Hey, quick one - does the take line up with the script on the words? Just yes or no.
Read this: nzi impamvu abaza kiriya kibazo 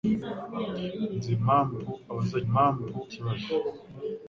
no